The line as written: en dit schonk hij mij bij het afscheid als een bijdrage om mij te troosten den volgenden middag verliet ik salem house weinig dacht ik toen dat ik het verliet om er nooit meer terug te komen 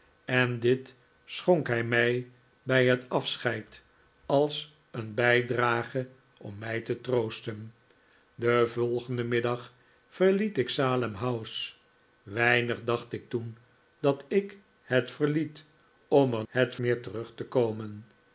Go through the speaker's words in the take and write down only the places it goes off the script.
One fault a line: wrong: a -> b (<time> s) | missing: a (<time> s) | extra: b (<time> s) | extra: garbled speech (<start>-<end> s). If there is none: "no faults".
wrong: nooit -> het (16.5 s)